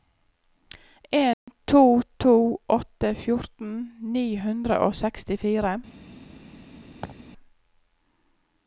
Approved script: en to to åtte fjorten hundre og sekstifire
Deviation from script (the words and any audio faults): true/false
true